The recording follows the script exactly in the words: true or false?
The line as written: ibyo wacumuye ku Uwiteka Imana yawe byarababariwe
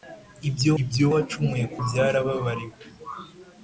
false